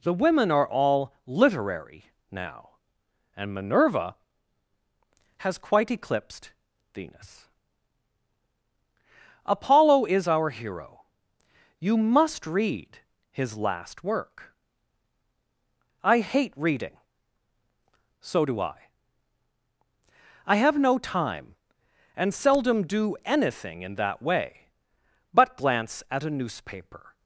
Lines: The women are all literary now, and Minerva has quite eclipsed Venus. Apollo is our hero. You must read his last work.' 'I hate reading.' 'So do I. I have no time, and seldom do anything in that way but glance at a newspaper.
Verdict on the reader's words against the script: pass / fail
pass